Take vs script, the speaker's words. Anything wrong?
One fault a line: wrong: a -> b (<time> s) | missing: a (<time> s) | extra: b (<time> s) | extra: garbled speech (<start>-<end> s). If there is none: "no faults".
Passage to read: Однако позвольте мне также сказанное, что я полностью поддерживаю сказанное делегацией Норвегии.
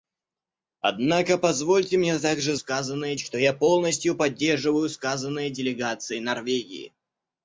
no faults